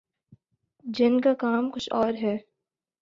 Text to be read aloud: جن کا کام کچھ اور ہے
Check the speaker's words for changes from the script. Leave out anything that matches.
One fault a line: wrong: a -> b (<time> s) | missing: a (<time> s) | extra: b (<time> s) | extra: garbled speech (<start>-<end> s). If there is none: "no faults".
no faults